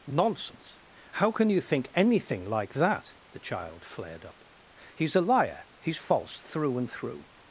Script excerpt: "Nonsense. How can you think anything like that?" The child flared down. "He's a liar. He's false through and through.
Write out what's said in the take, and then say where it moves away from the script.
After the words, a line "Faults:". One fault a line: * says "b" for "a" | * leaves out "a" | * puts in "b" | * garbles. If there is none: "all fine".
"Nonsense. How can you think anything like that?" The child flared up. "He's a liar. He's false through and through.
Faults:
* says "up" for "down"